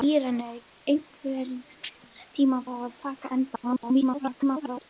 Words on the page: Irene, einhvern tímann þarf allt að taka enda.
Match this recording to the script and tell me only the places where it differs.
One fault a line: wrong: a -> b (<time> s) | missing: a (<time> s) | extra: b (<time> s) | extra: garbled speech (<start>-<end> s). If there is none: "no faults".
missing: þarf allt (2.6 s)
extra: garbled speech (3.6-4.9 s)